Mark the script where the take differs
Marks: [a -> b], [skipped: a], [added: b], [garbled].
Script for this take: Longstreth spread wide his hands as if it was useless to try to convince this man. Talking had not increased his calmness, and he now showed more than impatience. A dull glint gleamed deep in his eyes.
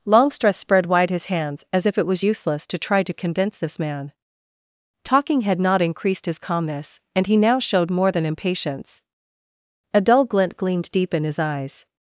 Longstreth spread wide his hands as if it was useless to try to convince this man. Talking had not increased his calmness, and he now showed more than impatience. A dull glint gleamed deep in his eyes.